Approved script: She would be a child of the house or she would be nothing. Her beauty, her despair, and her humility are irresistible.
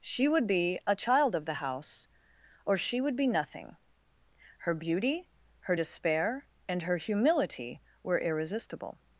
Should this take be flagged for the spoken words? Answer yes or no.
yes